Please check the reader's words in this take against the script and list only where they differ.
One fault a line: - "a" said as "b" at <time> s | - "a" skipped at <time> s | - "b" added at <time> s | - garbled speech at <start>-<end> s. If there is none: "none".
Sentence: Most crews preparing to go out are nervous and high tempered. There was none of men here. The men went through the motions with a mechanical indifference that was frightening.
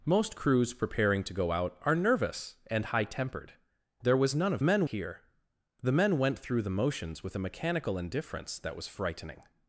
none